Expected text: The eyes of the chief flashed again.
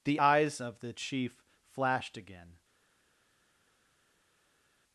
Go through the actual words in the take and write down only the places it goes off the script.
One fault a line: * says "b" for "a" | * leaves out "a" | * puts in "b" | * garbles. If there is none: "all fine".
all fine